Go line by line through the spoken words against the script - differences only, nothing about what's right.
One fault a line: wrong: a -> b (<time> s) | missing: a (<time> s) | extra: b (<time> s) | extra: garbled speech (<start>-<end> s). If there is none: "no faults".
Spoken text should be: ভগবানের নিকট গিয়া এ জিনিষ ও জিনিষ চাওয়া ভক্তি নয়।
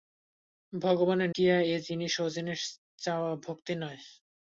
missing: নিকট (1.3 s)